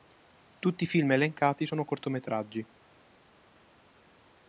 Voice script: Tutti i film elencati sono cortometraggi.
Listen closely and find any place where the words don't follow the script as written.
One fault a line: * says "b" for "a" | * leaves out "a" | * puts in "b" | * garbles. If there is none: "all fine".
all fine